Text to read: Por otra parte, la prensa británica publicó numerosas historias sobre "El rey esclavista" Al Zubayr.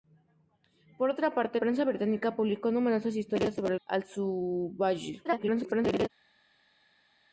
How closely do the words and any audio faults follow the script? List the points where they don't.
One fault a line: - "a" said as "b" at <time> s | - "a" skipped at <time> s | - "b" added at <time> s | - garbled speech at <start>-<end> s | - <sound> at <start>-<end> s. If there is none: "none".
- "la" skipped at 1.6 s
- "rey esclavista" skipped at 3.8 s
- garbled speech at 5.2-6.1 s